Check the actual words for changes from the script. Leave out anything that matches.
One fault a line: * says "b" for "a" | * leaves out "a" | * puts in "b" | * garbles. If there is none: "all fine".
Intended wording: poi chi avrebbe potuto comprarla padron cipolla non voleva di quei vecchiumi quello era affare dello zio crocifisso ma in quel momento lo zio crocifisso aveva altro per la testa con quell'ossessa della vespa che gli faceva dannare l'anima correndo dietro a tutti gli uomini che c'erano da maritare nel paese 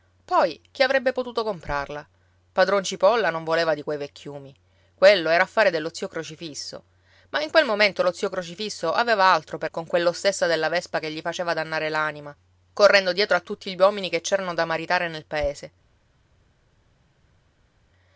* leaves out "la testa"